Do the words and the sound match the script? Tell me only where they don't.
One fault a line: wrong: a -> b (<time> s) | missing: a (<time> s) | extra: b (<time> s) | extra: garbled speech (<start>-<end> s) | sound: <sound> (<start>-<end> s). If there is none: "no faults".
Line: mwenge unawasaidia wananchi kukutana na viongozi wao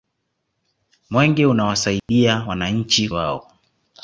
sound: dropout (2.0-2.1 s)
missing: kukutana na viongozi (3.1 s)